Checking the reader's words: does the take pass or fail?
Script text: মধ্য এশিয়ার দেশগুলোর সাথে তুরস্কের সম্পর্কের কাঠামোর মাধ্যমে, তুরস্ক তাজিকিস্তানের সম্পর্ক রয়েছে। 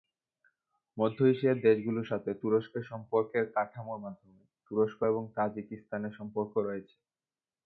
fail